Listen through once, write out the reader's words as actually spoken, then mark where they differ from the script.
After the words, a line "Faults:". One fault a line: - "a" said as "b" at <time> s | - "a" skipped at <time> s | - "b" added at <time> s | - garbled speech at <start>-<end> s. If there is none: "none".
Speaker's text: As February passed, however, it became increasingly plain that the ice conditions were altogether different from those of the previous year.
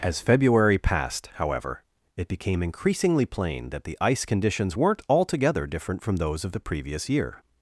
As February passed, however, it became increasingly plain that the ice conditions weren't altogether different from those of the previous year.
Faults:
- "were" said as "weren't" at 4.8 s